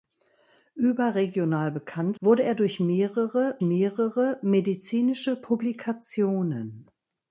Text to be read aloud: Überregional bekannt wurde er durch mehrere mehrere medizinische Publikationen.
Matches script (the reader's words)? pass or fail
pass